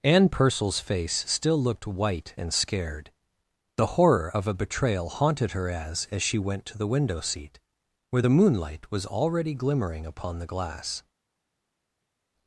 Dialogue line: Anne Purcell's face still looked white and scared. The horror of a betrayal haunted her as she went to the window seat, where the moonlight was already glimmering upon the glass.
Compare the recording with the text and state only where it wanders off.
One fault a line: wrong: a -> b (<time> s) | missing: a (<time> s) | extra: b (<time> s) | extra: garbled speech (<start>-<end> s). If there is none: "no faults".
extra: as (6.1 s)